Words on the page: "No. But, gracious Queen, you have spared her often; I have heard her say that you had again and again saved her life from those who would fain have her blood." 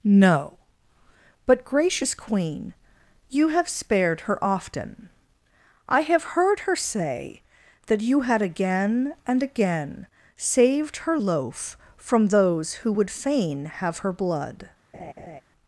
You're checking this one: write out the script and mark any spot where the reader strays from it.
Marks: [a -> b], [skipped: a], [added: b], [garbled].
"No. But, gracious Queen, you have spared her often; I have heard her say that you had again and again saved her [life -> loaf] from those who would fain have her blood."